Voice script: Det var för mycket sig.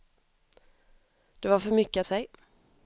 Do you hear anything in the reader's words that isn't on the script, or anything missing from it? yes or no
no